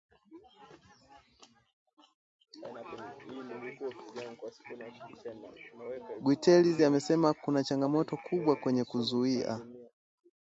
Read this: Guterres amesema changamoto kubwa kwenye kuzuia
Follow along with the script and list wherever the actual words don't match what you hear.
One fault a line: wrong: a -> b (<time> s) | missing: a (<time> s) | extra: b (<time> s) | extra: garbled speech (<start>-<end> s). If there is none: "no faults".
extra: kuna (7.3 s)